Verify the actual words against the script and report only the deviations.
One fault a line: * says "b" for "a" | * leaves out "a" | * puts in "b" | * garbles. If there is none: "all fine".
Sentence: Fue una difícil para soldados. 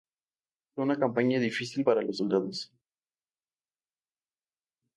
* puts in "campaña"
* puts in "los"